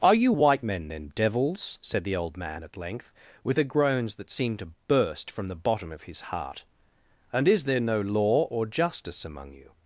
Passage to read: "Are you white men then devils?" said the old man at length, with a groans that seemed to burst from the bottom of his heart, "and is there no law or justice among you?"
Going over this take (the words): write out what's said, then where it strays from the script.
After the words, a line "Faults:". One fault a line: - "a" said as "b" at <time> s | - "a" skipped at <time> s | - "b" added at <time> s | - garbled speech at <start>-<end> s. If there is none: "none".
"Are you white men then devils?" said the old man at length, with a groans that seemed to burst from the bottom of his heart, "and is there no law or justice among you?"
Faults:
none